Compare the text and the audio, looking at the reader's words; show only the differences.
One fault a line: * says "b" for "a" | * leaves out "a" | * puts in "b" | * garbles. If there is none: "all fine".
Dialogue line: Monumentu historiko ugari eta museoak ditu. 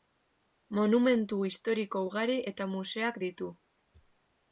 all fine